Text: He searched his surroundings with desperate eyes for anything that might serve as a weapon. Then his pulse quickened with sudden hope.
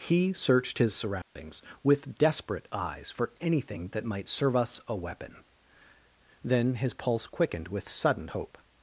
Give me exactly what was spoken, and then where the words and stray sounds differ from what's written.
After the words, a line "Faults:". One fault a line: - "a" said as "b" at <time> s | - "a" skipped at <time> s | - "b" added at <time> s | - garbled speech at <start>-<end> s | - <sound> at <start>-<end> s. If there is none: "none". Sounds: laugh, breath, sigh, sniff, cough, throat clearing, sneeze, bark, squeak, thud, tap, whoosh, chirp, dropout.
He searched his surroundings with desperate eyes for anything that might serve us a weapon. Then his pulse quickened with sudden hope.
Faults:
- dropout at 1.2-1.4 s
- "as" said as "us" at 4.5 s